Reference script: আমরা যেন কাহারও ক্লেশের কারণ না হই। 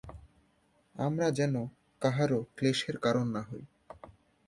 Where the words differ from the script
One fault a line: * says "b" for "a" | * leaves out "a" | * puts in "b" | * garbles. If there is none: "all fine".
all fine